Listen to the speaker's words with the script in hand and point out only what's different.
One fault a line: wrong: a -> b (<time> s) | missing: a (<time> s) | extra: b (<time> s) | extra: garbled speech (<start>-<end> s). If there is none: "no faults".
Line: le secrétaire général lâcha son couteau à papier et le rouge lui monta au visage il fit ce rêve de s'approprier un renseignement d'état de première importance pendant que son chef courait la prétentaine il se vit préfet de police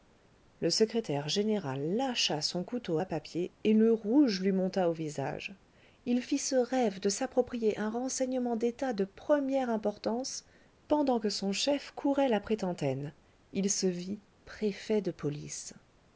no faults